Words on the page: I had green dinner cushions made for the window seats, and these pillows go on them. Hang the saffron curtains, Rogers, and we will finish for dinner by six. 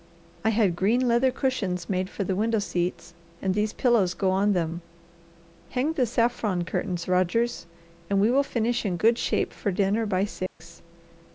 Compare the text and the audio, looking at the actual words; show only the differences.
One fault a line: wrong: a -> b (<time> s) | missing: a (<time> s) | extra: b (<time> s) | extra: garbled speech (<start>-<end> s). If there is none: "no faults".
wrong: dinner -> leather (1.1 s)
extra: in good shape (8.8 s)